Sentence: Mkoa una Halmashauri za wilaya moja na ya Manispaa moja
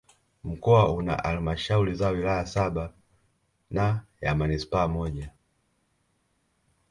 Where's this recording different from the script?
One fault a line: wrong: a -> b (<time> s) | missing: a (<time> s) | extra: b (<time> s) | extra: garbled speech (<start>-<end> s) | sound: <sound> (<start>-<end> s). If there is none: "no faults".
wrong: moja -> saba (2.5 s)